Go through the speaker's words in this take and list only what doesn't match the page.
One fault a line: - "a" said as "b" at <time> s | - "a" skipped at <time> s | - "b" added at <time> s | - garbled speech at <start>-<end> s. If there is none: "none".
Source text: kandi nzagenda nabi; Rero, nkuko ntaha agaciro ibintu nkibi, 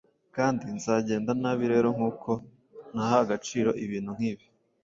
none